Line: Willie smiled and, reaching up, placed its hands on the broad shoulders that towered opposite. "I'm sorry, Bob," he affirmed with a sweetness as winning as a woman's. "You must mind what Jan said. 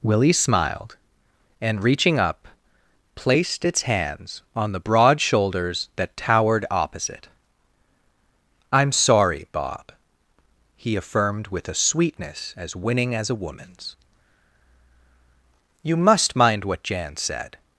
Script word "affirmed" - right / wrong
right